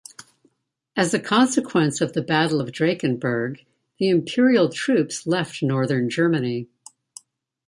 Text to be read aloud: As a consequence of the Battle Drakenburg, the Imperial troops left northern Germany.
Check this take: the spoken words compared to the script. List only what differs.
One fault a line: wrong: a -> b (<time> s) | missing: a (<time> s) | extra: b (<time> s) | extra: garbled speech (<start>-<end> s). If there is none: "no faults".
extra: of (2.6 s)